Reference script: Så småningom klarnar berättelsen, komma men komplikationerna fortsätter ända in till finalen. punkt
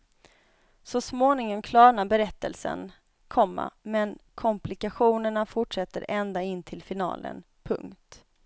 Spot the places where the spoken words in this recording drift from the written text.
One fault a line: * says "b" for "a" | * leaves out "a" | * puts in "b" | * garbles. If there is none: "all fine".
all fine